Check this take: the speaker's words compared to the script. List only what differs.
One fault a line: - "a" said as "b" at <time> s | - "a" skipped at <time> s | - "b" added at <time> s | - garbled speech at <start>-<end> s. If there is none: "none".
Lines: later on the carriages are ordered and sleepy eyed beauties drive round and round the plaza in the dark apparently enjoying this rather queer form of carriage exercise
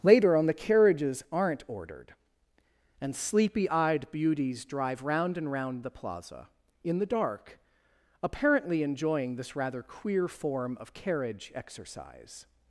- "are" said as "aren't" at 1.3 s